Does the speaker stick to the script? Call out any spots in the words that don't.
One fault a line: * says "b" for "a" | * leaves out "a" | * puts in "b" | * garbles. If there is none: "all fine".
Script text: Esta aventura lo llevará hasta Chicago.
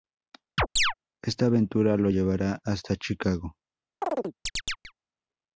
all fine